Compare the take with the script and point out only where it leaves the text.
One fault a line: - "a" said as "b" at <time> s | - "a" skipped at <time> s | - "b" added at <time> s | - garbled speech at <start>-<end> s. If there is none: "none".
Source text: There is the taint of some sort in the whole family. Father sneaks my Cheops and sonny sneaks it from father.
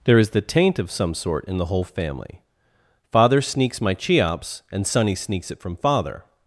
none